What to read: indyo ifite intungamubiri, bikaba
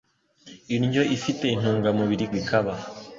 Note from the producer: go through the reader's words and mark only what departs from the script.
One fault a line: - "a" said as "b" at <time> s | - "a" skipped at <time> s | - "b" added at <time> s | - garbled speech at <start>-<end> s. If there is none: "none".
none